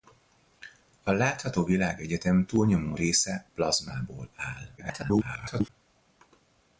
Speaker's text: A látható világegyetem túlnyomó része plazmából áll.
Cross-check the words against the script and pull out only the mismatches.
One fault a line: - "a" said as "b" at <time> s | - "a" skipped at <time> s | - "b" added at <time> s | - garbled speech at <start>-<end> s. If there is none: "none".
- garbled speech at 4.8-5.7 s